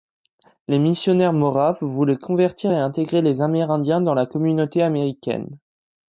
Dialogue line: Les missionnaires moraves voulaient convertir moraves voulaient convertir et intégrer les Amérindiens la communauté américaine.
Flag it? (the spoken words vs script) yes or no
yes